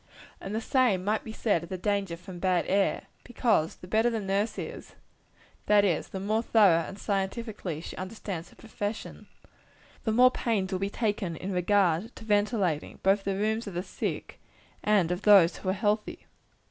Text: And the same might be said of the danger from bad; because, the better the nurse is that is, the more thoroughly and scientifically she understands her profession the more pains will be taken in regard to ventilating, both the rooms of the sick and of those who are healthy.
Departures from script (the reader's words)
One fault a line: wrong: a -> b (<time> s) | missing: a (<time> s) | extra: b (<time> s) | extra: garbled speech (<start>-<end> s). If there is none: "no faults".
extra: air (2.7 s)